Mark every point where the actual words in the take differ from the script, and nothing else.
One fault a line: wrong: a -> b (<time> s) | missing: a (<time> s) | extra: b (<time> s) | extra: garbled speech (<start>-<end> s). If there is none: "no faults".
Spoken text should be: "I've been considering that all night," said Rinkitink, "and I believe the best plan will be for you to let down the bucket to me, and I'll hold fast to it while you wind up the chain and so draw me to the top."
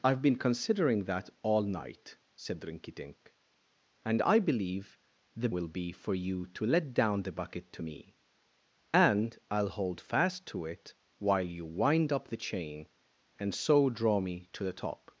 missing: best plan (5.5 s)